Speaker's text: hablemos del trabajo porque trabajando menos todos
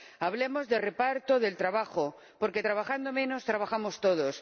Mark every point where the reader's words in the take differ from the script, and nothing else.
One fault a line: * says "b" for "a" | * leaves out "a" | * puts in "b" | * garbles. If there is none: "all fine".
* puts in "de reparto"
* puts in "trabajamos"